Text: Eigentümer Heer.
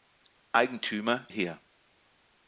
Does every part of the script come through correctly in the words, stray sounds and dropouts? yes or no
yes